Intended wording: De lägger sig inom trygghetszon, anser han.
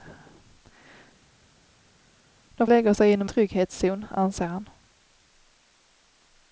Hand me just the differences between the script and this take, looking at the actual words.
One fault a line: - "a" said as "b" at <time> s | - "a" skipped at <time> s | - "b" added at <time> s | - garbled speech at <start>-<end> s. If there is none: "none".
none